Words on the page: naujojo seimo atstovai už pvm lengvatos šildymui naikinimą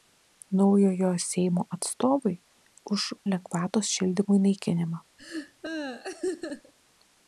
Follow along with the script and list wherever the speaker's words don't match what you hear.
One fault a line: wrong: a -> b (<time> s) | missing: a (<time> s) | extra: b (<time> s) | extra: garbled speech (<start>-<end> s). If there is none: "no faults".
missing: pvm (3.0 s)